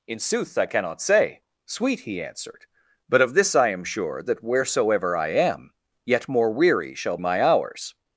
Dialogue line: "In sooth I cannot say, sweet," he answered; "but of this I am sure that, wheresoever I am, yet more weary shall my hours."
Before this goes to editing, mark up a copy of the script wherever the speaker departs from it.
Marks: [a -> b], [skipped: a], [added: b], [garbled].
"In sooth I cannot say, sweet," he answered; "but of this I am sure that, wheresoever I am, yet more weary shall my hours."